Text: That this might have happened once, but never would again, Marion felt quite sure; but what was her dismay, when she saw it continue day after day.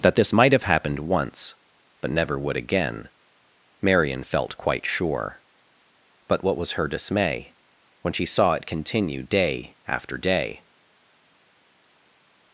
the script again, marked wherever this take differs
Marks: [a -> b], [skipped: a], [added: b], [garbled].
That this might have happened once, but never would again, Marion felt quite sure; but what was her dismay, when she saw it continue day after day.